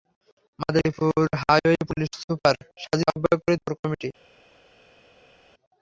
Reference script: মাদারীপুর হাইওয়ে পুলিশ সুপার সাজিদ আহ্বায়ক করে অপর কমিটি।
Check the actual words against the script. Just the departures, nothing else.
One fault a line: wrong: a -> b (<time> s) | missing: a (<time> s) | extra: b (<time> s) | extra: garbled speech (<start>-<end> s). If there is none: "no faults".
no faults